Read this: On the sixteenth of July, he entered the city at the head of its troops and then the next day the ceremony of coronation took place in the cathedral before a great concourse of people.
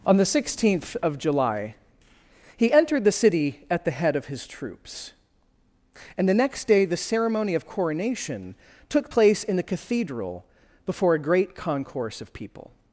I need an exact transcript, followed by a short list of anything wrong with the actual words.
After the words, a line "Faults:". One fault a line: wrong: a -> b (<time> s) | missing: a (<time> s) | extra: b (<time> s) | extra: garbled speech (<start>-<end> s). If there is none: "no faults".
On the sixteenth of July, he entered the city at the head of his troops and the next day the ceremony of coronation took place in the cathedral before a great concourse of people.
Faults:
wrong: its -> his (4.3 s)
missing: then (6.3 s)